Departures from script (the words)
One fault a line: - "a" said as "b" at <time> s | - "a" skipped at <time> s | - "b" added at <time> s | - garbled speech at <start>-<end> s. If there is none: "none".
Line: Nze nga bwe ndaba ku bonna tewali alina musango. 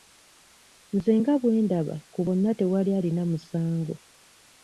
none